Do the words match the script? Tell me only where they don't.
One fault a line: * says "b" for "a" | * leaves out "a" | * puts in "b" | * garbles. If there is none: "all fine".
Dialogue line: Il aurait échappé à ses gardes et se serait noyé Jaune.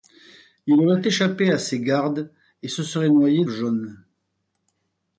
all fine